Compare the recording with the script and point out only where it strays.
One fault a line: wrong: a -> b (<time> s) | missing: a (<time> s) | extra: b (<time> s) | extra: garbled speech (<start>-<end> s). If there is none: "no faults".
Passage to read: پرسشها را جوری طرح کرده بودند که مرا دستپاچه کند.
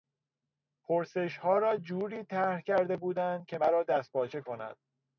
no faults